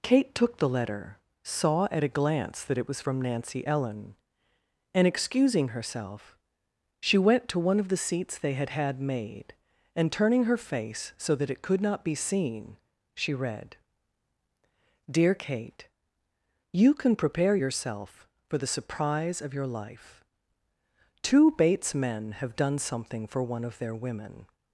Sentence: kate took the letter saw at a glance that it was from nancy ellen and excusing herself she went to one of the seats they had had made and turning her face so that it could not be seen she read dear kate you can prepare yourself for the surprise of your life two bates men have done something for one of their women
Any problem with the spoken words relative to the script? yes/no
no